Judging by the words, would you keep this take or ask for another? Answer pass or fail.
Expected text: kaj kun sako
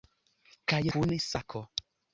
pass